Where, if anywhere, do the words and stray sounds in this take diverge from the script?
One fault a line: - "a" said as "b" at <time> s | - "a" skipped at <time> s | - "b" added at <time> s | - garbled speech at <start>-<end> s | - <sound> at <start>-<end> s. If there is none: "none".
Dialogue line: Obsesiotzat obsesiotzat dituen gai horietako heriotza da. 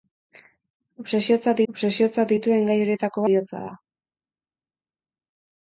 none